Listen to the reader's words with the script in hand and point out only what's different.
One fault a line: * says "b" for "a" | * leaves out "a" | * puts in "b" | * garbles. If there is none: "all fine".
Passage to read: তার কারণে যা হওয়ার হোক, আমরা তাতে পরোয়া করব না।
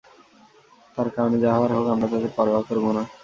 all fine